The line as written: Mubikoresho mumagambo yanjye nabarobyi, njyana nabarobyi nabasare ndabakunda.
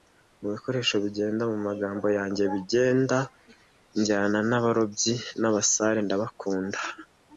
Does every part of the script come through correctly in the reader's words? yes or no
no